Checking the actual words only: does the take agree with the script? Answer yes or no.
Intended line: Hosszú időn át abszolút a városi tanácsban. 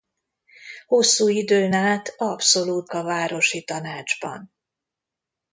yes